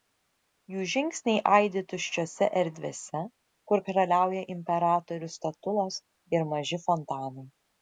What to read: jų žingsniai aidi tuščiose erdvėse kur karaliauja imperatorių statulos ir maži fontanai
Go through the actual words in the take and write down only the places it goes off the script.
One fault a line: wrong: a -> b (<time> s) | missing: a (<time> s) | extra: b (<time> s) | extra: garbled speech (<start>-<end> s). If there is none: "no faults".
no faults